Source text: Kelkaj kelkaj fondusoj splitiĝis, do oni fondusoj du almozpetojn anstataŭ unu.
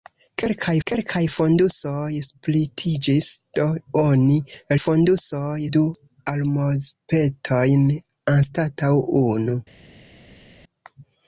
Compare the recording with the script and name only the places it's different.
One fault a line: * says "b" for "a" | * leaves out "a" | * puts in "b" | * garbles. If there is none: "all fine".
all fine